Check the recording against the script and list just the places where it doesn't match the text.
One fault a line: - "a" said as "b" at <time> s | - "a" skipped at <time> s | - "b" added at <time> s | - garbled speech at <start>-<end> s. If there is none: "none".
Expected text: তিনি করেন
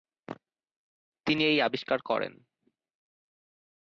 - "এই আবিষ্কার" added at 1.4 s